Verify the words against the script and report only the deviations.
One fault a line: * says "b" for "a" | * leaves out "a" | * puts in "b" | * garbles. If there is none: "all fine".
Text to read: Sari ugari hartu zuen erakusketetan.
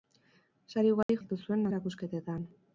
all fine